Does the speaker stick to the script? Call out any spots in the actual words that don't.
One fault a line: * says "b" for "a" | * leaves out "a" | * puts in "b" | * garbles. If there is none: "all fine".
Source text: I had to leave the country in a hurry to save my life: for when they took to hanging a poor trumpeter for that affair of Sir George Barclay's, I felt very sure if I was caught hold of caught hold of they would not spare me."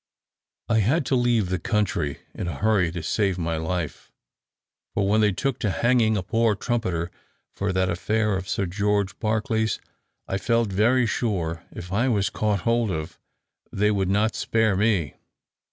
* leaves out "caught hold of"